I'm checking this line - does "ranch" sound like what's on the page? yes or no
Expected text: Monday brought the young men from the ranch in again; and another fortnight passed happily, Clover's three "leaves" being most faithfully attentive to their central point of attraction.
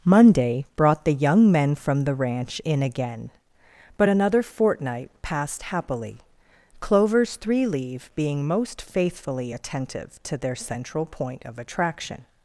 yes